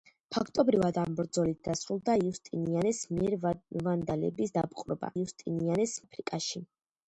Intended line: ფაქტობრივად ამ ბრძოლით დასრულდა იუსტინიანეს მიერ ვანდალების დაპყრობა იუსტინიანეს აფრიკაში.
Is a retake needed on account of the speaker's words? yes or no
no